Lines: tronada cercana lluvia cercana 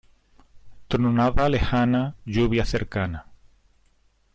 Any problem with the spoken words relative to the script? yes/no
yes